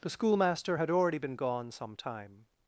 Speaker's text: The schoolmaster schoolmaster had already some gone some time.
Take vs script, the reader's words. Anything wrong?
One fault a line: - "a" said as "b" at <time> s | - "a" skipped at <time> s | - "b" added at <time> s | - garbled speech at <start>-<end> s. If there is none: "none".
- "schoolmaster" skipped at 0.8 s
- "some" said as "been" at 1.2 s